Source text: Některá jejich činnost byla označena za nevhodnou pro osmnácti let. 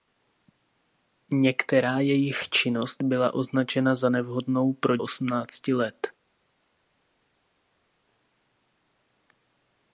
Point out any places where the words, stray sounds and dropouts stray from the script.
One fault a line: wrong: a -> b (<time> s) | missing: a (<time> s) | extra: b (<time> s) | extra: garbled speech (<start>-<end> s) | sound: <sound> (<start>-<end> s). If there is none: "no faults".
no faults